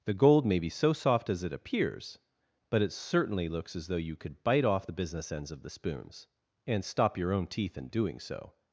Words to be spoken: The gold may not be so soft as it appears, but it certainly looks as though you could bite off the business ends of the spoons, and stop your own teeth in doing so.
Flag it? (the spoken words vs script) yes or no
yes